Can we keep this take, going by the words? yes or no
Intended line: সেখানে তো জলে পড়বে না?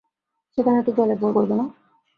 no